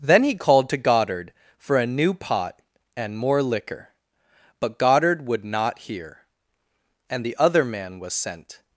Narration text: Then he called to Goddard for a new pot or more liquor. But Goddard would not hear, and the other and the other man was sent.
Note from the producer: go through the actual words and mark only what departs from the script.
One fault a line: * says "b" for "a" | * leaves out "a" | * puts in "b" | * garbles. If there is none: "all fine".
* says "and" for "or"
* leaves out "and the other"